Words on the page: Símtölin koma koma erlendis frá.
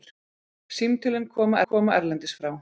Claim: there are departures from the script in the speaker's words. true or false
false